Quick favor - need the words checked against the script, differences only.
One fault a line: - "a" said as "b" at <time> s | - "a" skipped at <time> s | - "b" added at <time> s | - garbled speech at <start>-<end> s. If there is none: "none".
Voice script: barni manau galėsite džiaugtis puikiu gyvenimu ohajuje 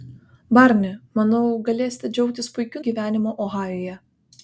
none